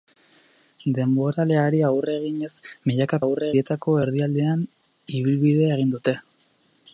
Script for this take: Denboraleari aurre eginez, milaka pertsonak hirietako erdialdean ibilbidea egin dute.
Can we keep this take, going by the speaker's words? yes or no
no